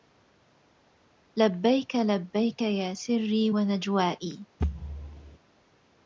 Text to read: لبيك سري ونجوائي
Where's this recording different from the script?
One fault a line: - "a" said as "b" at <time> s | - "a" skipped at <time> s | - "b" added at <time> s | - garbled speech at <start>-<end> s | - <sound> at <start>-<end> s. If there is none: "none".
- "لبيك يا" added at 1.9 s
- thud at 4.6-5.4 s